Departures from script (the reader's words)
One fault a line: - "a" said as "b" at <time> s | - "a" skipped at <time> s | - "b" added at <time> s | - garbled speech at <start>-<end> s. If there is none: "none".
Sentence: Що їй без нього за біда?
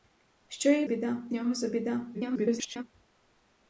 - "без" said as "біда" at 0.8 s
- garbled speech at 2.1-2.8 s